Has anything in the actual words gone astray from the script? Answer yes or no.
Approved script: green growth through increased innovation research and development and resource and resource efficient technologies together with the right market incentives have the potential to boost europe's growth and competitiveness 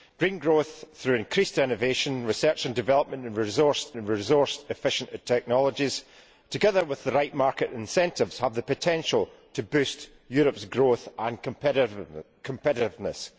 no